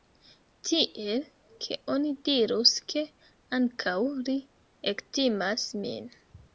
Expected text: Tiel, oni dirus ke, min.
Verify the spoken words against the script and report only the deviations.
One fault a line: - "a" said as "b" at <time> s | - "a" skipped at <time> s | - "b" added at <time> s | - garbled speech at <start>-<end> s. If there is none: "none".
- "ke" added at 1.6 s
- "ankaŭ li ektimas" added at 3.6 s